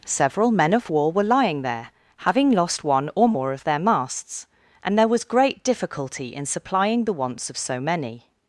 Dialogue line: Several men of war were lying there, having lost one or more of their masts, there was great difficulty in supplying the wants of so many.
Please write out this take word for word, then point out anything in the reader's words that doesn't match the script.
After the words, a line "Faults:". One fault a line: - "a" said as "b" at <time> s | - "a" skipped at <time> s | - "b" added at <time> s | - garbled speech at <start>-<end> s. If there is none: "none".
Several men of war were lying there, having lost one or more of their masts, and there was great difficulty in supplying the wants of so many.
Faults:
- "and" added at 4.8 s